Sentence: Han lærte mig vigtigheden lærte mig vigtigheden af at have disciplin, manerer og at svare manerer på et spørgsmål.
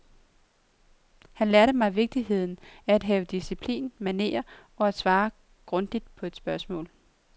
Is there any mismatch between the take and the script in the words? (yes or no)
yes